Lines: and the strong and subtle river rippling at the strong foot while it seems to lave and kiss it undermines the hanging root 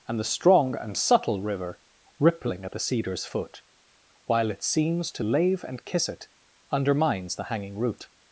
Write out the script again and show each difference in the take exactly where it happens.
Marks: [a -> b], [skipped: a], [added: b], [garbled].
and the strong and subtle river rippling at the [strong -> cedar's] foot while it seems to lave and kiss it undermines the hanging root